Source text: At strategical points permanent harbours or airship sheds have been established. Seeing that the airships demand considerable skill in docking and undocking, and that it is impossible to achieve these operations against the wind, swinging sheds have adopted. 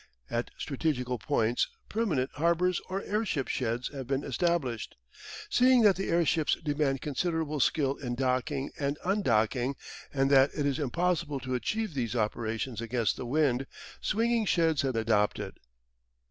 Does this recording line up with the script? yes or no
yes